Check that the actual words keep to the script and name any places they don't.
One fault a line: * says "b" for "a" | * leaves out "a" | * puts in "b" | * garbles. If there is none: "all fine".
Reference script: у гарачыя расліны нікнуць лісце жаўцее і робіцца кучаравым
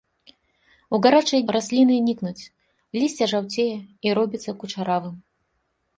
all fine